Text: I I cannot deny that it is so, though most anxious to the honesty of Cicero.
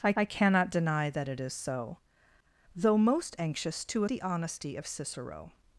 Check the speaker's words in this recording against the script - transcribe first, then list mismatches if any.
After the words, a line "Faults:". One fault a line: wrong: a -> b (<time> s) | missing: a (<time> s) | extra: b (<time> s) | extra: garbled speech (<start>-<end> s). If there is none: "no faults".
I I cannot deny that it is so, though most anxious to the honesty of Cicero.
Faults:
no faults